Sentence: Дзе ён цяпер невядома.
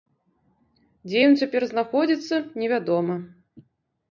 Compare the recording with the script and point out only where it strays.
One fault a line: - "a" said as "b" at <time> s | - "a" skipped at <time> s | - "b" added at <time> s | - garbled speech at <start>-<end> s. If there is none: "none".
- "знаходзіцца" added at 1.7 s